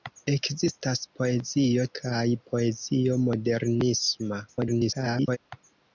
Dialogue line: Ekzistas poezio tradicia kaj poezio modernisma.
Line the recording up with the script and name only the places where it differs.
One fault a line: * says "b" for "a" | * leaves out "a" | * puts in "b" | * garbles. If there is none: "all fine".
* leaves out "tradicia"
* garbles